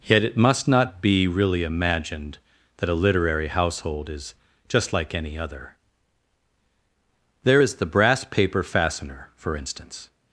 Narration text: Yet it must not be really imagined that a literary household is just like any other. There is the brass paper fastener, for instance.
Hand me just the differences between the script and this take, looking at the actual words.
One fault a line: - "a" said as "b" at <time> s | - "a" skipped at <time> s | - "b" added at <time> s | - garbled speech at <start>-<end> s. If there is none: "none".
none